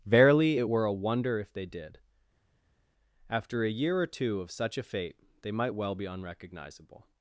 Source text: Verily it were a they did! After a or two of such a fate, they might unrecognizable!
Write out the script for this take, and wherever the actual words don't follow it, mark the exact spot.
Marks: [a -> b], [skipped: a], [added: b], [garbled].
Verily it were a [added: wonder if] they did! After a [added: year] or two of such a fate, they might [added: well be] unrecognizable!